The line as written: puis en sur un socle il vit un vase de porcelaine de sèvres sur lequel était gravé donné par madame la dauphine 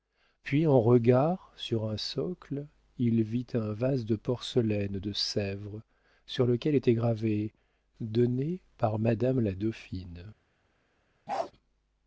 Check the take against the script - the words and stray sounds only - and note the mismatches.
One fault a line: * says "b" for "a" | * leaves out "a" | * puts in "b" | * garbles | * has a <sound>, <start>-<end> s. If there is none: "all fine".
* puts in "regard"
* has a bark, 11.3-11.5 s